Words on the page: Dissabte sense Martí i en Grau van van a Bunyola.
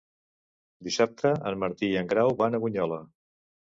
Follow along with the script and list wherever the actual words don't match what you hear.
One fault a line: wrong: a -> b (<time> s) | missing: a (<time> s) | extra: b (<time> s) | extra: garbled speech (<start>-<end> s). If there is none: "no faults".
wrong: sense -> en (1.5 s)
missing: van (2.6 s)